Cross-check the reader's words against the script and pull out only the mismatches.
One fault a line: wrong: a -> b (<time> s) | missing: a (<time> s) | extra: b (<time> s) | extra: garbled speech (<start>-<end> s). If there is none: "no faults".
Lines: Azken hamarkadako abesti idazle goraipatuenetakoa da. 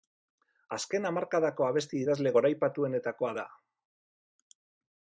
no faults